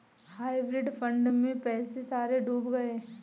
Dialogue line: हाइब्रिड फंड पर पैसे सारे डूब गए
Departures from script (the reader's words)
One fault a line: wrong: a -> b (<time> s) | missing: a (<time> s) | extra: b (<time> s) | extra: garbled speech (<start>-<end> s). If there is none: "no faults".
wrong: पर -> में (1.3 s)